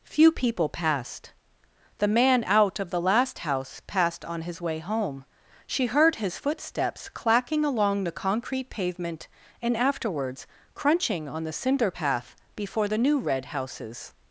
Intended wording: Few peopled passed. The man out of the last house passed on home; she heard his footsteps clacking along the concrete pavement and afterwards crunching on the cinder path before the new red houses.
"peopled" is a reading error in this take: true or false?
true